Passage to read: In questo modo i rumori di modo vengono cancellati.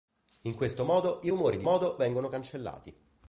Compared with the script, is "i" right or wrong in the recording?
right